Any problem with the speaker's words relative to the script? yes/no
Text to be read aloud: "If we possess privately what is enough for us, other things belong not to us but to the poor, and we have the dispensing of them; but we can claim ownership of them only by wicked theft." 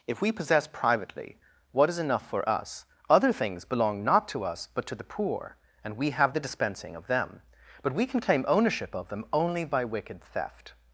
no